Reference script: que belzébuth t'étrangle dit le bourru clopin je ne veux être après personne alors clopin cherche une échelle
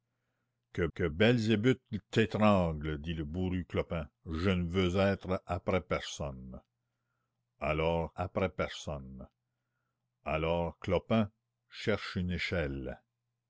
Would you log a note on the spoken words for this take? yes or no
yes